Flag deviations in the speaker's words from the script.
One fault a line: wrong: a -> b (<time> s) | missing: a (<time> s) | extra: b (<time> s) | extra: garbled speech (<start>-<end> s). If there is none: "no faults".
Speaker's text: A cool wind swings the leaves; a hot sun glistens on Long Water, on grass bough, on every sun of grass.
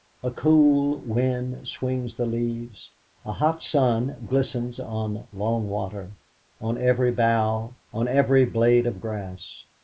wrong: grass -> every (6.8 s)
wrong: sun -> blade (8.5 s)